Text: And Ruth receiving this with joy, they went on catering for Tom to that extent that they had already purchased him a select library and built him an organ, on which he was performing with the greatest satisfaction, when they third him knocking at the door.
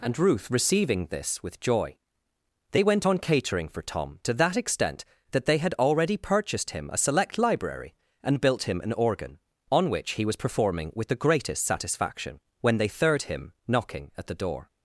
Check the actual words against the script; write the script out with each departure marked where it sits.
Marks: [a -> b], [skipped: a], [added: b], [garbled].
And Ruth receiving this with joy, they went on catering for Tom to that extent that they had already purchased him a select library and built him an organ, on which he was performing with the greatest satisfaction, when they third him knocking at the door.